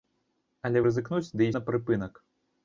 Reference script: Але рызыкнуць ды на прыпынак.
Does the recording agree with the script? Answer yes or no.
yes